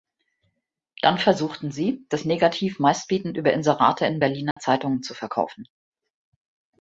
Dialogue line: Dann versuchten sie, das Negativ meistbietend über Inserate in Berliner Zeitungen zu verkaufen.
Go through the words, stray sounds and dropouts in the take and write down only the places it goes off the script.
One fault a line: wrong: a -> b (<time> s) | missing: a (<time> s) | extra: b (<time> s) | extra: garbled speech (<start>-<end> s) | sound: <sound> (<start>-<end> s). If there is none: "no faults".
sound: dropout (4.5-4.6 s)